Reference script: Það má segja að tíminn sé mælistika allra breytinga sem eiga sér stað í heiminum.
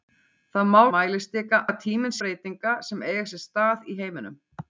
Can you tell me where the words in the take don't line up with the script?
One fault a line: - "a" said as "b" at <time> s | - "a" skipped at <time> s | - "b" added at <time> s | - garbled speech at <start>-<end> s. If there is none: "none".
- "segja" said as "mælistika" at 0.9 s
- "sé mælistika allra" skipped at 2.2 s